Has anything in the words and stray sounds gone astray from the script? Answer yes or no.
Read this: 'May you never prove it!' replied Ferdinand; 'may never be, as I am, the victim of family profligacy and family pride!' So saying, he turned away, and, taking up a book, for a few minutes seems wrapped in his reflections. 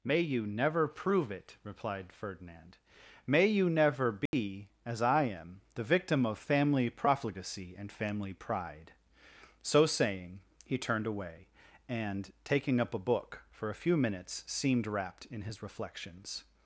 yes